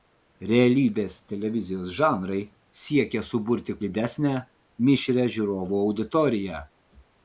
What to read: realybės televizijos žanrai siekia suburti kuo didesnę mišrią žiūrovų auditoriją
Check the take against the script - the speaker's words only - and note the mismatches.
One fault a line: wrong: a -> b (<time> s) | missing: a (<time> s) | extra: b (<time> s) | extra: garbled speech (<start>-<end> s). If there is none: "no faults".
missing: kuo (3.8 s)